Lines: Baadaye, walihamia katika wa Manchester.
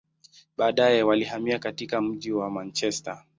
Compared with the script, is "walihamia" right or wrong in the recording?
right